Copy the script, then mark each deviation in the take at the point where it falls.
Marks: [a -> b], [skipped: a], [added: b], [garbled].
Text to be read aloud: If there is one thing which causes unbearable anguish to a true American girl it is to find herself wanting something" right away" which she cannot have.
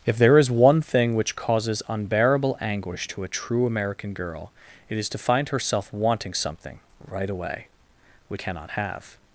If there is one thing which causes unbearable anguish to a true American girl it is to find herself wanting something" right away" which [skipped: she] cannot have.